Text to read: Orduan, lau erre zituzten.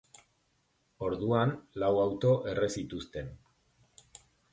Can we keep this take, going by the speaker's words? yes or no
no